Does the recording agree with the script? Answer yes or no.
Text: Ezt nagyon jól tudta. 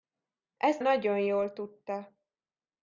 yes